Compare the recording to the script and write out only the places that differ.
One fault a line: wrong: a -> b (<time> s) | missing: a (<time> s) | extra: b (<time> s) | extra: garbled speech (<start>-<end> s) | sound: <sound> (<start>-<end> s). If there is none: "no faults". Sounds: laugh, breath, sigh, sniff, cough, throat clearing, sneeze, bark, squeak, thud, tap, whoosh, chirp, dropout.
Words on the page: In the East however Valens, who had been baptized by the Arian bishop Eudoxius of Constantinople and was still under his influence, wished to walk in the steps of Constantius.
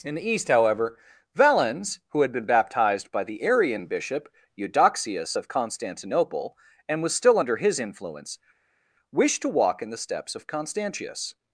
no faults